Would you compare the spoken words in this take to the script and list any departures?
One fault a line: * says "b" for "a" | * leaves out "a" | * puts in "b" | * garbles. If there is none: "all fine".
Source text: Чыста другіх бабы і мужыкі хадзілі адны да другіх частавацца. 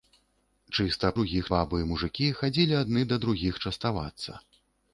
all fine